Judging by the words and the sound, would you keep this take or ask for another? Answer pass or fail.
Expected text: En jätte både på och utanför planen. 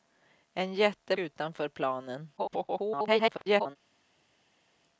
fail